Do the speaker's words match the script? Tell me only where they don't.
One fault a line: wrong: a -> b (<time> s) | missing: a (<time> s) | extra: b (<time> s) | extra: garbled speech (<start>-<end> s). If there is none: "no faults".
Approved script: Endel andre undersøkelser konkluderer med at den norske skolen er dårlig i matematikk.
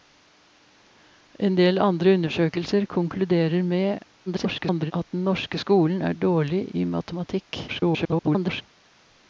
extra: garbled speech (4.3-4.9 s)
extra: garbled speech (7.7-8.6 s)